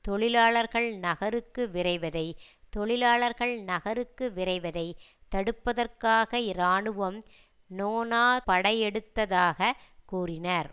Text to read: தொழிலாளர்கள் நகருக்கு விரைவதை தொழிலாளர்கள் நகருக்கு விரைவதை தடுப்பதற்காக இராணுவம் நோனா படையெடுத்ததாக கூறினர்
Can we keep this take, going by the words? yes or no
yes